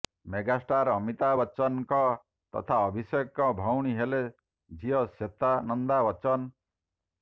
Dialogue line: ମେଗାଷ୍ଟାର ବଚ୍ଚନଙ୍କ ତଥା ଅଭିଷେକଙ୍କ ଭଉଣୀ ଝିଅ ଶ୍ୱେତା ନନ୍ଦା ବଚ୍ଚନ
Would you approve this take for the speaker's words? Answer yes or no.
no